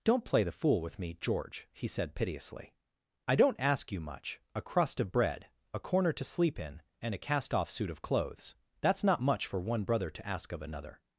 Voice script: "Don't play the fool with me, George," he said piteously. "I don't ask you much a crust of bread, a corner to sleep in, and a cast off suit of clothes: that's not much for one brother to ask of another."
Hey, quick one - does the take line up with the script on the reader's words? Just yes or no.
yes